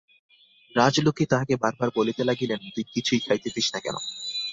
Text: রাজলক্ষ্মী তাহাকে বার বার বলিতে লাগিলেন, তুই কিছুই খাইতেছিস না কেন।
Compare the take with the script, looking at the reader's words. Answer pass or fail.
pass